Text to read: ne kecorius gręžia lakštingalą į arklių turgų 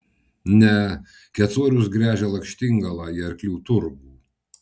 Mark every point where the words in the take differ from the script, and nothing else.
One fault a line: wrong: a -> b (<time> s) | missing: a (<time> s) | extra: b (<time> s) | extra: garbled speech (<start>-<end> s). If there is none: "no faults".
no faults